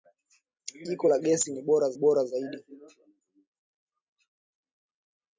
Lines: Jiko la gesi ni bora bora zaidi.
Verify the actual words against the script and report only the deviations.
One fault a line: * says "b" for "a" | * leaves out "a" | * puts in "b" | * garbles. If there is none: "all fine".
all fine